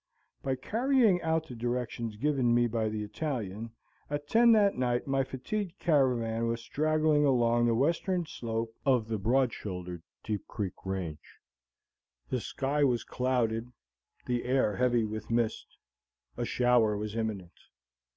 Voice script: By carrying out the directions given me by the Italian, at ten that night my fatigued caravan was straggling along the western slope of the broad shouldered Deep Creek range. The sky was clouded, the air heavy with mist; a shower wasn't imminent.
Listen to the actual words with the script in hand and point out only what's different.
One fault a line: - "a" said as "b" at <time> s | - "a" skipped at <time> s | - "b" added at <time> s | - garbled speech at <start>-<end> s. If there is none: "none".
- "wasn't" said as "was" at 17.0 s